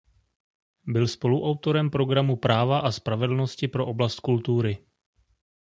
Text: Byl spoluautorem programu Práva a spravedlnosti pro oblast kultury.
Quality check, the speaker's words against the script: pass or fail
pass